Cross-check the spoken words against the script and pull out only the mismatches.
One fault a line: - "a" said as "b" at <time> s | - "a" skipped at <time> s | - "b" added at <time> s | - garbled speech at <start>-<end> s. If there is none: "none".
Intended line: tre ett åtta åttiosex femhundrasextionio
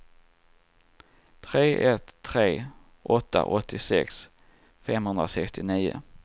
- "tre" added at 2.2 s